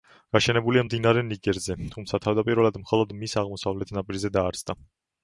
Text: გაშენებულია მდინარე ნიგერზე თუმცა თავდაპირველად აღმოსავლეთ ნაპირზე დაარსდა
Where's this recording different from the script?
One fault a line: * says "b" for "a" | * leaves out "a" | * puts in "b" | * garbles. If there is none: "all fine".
* puts in "მხოლოდ მის"